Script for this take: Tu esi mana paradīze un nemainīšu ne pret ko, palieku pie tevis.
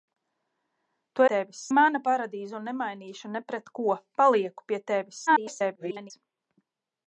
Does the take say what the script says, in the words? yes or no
no